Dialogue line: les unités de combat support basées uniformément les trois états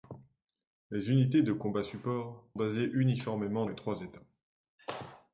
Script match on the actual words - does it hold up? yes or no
yes